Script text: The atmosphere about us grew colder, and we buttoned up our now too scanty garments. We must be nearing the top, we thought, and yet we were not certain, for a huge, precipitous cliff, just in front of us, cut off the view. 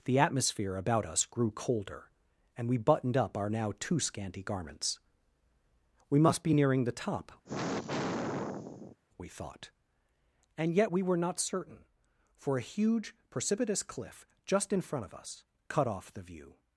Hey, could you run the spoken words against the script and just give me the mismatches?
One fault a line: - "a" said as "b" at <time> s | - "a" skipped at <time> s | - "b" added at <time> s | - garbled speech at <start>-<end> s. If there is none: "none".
none